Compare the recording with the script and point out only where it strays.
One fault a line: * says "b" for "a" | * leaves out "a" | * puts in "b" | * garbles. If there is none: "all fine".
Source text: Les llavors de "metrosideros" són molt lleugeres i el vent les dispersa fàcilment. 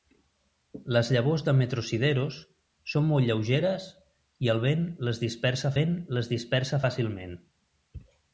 * puts in "vent les dispersa"